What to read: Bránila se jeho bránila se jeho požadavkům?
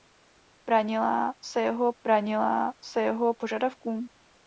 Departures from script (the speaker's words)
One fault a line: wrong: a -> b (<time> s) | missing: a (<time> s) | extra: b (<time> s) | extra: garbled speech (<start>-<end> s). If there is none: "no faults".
no faults